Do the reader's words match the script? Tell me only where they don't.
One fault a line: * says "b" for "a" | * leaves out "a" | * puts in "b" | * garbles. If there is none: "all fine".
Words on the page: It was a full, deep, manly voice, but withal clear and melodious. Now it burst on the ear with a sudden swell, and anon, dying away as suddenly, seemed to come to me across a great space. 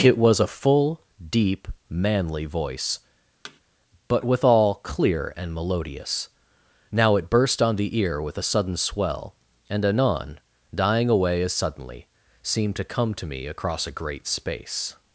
all fine